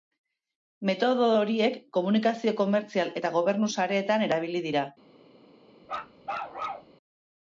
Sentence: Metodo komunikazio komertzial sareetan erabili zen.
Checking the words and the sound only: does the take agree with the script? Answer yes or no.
no